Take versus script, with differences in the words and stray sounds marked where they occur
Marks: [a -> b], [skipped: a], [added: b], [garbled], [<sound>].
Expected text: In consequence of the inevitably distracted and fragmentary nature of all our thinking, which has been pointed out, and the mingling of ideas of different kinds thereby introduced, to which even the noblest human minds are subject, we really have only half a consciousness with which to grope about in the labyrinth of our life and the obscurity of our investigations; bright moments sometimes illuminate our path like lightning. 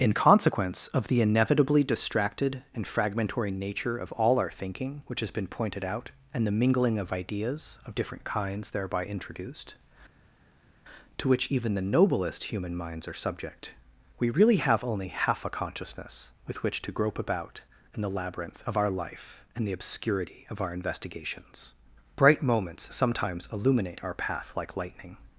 In consequence of the inevitably distracted and fragmentary nature of all our thinking, which has been pointed out, and the mingling of ideas of different kinds thereby introduced, to which even the noblest human minds are subject, we really have only half a consciousness with which to grope about in the labyrinth of our life and the obscurity of our investigations; bright moments sometimes illuminate our path like lightning.